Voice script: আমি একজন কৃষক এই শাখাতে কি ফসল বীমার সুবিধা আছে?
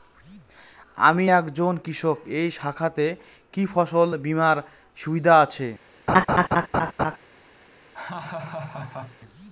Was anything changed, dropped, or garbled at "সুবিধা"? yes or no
no